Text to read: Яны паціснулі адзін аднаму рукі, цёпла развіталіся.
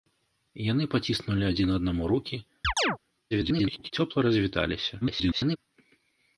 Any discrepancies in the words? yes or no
yes